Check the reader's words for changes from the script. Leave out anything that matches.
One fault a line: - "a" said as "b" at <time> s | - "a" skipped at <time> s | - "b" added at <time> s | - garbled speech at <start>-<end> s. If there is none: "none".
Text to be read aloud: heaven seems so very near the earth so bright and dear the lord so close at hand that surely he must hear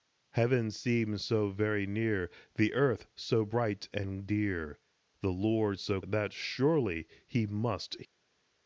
- "close at hand" skipped at 6.0 s